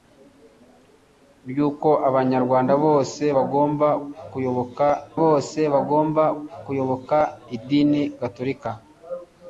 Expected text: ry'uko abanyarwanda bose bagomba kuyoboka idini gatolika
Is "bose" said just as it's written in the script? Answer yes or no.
yes